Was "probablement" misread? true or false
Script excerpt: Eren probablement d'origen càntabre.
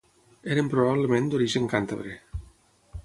false